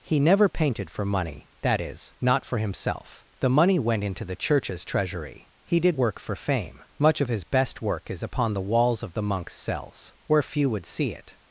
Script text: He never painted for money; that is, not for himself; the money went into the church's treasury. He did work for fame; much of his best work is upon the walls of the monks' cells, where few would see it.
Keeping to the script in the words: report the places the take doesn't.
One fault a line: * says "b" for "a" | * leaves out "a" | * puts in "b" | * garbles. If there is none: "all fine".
all fine